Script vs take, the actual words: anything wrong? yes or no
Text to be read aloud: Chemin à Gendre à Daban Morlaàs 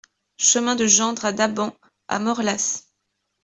yes